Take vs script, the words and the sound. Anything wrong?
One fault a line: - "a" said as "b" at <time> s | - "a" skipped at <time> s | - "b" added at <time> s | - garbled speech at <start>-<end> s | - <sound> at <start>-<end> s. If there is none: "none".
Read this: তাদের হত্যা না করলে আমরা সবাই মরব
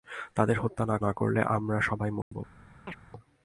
- "না" added at 1.0 s
- dropout at 2.2-2.3 s
- chirp at 2.9-3.0 s